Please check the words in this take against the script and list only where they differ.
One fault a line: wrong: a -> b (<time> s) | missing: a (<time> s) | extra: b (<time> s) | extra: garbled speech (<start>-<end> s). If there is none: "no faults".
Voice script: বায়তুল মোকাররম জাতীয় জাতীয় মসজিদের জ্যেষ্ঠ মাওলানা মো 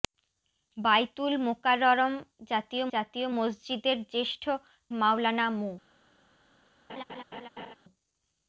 no faults